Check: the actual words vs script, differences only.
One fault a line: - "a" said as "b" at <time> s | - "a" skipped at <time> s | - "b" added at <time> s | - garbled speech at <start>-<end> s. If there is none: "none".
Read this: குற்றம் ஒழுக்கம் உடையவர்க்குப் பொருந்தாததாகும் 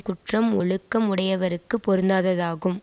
none